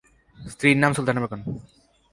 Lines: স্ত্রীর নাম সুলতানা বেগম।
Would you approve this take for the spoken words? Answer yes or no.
yes